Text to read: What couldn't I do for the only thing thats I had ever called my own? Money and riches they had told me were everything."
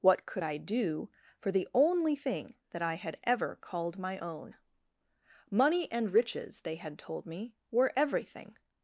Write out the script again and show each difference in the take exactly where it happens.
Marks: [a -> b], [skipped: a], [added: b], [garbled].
What [couldn't -> could] I do for the only thing [thats -> that] I had ever called my own? Money and riches they had told me were everything."